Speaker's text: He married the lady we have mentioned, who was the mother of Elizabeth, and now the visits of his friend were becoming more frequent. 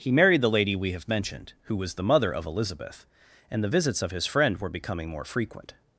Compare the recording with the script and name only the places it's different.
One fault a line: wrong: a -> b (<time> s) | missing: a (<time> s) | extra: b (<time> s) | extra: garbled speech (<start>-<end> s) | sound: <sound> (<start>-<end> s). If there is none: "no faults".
missing: now (3.6 s)